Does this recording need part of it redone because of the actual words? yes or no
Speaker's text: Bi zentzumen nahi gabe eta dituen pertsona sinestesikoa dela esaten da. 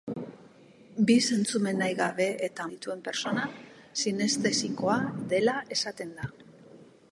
no